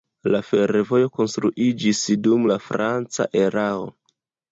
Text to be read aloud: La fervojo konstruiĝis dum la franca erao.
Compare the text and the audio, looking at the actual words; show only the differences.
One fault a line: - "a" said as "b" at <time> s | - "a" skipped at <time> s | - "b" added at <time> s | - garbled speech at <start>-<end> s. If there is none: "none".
none